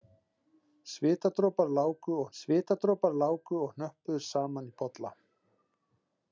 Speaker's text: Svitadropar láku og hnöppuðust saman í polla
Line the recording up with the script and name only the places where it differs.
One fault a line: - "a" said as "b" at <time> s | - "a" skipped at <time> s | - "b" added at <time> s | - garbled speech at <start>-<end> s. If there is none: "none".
- "svitadropar láku og" added at 2.4 s